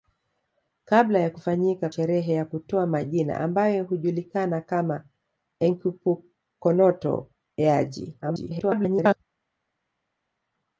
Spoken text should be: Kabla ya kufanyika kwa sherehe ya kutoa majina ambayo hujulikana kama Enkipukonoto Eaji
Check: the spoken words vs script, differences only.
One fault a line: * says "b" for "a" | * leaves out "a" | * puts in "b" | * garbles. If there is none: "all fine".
* leaves out "kwa"
* garbles